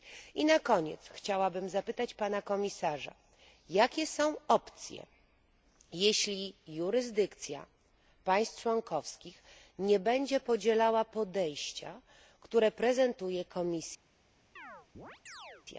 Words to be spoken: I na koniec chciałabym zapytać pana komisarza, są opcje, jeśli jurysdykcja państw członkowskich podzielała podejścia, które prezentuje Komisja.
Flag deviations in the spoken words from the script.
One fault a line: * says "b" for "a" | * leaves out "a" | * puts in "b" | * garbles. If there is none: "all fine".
* puts in "jakie"
* puts in "nie będzie"